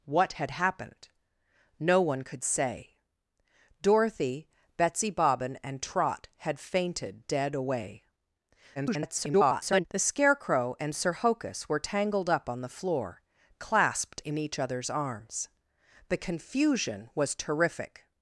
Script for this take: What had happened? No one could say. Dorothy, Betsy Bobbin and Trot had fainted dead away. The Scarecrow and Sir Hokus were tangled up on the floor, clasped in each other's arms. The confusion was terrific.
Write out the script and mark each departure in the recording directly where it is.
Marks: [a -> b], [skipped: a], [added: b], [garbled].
What had happened? No one could say. Dorothy, Betsy Bobbin and Trot had fainted dead away. [garbled] The Scarecrow and Sir Hokus were tangled up on the floor, clasped in each other's arms. The confusion was terrific.